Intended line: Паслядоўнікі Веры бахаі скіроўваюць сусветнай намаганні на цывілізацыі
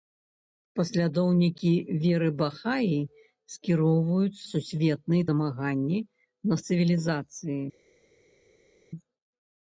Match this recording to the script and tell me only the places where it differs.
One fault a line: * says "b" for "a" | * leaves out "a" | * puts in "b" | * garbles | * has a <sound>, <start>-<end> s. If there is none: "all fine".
all fine